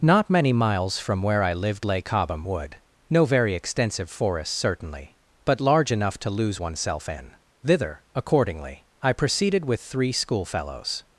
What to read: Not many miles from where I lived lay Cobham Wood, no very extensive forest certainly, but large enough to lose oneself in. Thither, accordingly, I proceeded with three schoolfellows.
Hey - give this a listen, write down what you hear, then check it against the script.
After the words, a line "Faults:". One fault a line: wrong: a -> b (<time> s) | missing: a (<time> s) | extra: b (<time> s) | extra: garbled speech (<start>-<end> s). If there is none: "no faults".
Not many miles from where I lived lay Cobham Wood, no very extensive forest certainly, but large enough to lose oneself in. Thither, accordingly, I proceeded with three schoolfellows.
Faults:
no faults